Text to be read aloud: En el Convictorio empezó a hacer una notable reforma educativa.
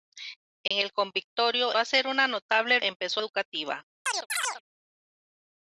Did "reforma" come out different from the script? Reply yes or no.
yes